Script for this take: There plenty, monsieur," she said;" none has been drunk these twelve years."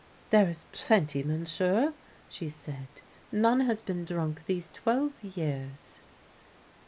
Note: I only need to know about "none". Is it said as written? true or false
true